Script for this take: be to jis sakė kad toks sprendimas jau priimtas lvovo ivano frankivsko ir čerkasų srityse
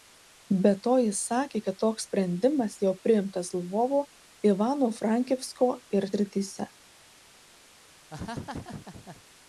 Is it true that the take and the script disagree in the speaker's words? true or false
true